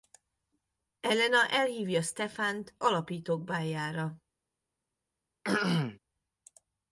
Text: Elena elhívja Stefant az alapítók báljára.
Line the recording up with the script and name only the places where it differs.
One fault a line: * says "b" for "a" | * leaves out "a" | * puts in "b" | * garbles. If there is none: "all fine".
* leaves out "az"